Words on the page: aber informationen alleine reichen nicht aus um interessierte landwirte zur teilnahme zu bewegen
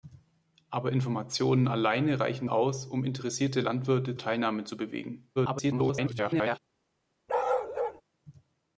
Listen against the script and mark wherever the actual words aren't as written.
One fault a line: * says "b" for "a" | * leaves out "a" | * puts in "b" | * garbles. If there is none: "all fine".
* leaves out "nicht"
* leaves out "zur"
* garbles